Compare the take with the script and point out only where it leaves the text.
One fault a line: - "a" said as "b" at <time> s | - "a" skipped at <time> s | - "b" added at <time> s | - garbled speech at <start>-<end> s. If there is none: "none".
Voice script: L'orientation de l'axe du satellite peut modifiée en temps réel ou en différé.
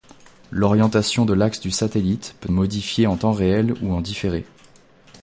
none